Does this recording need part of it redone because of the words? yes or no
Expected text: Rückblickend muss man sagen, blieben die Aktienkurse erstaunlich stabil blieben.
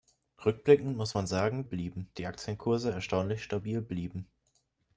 no